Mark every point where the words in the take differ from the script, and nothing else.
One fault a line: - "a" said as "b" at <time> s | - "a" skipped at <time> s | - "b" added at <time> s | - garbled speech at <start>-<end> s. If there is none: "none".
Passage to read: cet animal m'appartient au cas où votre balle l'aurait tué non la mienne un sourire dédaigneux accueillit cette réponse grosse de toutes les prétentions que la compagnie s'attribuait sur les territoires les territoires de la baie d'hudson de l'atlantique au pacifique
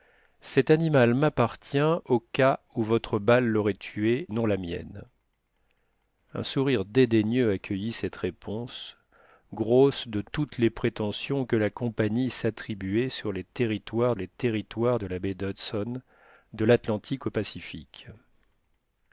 none